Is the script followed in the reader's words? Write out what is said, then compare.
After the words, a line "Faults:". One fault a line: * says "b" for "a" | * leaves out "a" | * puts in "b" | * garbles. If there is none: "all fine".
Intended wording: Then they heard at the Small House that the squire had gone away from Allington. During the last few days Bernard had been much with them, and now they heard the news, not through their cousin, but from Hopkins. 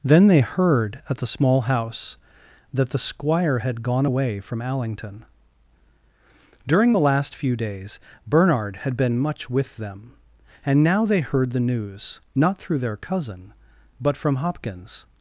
Then they heard at the Small House that the squire had gone away from Allington. During the last few days Bernard had been much with them, and now they heard the news, not through their cousin, but from Hopkins.
Faults:
all fine